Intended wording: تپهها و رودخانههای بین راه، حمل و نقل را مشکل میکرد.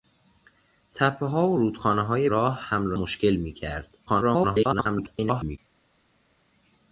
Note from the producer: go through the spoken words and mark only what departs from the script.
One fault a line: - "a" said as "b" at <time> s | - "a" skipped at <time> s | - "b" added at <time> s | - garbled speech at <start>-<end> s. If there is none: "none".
- "بین" skipped at 2.3 s
- "نقل را" skipped at 3.0 s
- garbled speech at 4.1-5.6 s